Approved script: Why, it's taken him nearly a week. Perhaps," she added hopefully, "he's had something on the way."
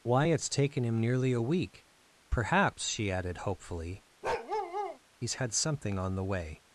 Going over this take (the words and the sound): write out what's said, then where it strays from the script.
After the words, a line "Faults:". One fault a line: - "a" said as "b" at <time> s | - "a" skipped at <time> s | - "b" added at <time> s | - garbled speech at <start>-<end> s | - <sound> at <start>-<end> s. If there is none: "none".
Why, it's taken him nearly a week. Perhaps," she added hopefully, "he's had something on the way."
Faults:
- bark at 4.2-5.0 s